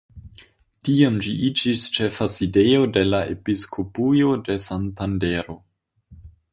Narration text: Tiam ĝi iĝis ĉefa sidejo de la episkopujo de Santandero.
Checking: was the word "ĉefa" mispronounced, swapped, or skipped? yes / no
no